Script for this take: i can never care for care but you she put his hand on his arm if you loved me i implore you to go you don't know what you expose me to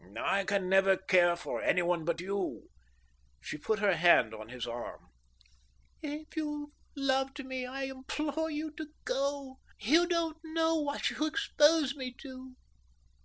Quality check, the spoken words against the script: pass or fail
fail